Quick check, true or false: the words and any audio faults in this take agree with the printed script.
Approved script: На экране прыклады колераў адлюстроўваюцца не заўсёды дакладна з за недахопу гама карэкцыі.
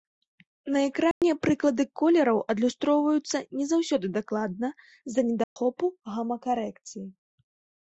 false